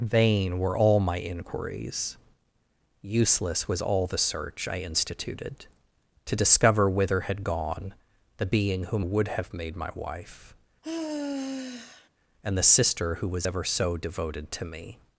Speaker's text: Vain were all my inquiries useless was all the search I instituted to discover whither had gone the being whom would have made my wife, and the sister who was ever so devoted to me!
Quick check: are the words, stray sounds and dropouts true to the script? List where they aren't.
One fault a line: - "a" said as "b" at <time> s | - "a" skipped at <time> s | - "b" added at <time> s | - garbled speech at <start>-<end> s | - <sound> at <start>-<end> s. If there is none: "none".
- sigh at 10.8-12.1 s